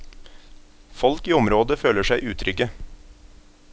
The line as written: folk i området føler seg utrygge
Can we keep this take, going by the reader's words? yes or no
yes